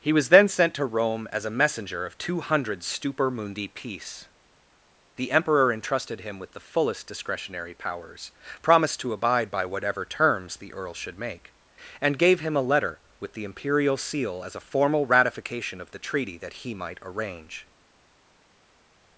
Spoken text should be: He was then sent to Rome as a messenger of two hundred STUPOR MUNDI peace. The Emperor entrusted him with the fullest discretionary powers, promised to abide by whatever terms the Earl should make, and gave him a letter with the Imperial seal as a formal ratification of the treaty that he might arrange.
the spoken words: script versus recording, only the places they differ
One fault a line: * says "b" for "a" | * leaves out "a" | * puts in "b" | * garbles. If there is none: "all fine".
all fine